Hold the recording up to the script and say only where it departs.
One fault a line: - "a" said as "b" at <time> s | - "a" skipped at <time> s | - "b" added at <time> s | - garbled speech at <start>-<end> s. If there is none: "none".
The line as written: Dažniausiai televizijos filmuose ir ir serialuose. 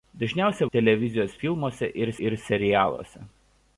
none